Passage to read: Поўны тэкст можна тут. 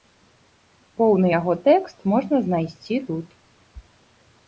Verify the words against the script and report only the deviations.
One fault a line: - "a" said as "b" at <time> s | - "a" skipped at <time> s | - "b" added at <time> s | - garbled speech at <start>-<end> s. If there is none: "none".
- "яго" added at 1.4 s
- "знайсці" added at 2.5 s